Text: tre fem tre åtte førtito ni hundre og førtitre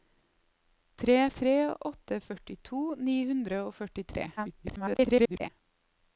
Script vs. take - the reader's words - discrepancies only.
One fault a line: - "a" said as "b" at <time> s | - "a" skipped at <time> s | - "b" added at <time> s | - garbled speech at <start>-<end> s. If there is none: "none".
- "fem" skipped at 1.2 s
- garbled speech at 4.4-5.5 s